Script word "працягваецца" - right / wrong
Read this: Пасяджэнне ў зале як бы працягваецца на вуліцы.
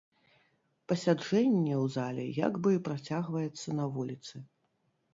right